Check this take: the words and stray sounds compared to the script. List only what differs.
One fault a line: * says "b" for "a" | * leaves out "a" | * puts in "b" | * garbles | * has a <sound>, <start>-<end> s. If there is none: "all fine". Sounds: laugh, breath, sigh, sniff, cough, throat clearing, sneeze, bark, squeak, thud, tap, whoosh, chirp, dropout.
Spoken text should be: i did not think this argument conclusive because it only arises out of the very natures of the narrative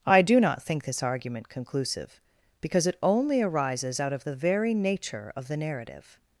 * says "do" for "did"
* says "nature" for "natures"